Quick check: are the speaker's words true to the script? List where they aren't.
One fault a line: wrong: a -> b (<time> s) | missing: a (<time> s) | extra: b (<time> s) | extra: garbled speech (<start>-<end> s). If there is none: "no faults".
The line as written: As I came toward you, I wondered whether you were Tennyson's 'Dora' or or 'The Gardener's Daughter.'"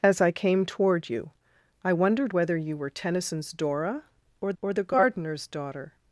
no faults